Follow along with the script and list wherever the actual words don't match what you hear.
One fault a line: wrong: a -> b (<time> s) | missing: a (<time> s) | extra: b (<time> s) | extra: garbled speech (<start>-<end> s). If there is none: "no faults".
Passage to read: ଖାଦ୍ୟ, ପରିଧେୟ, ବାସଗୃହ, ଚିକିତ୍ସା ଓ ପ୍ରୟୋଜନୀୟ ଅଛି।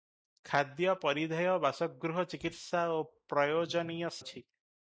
no faults